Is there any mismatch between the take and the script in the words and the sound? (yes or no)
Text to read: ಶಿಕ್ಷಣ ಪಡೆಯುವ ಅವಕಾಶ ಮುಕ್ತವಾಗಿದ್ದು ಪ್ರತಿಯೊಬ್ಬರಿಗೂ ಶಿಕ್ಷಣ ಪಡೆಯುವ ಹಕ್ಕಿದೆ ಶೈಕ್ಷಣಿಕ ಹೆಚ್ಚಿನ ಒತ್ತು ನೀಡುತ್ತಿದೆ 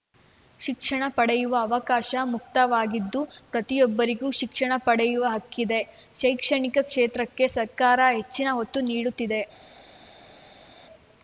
yes